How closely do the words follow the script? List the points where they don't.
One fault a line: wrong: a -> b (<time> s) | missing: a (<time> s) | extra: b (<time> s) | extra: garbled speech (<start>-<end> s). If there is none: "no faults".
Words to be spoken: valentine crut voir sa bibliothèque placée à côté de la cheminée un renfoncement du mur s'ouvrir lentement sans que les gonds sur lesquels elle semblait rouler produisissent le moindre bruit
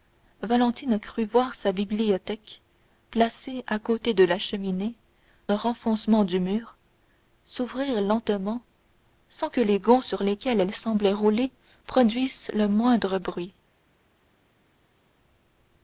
no faults